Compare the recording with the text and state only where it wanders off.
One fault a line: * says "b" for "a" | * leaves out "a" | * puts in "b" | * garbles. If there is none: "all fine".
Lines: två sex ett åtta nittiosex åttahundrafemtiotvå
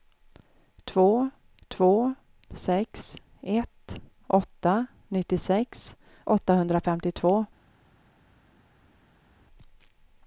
* puts in "två"